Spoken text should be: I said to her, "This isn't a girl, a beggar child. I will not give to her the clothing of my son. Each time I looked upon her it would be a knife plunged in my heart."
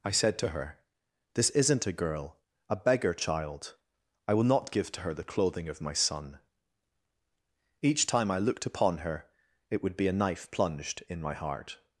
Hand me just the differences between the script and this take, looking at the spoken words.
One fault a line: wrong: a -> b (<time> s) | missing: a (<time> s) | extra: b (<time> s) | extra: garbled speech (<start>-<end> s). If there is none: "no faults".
no faults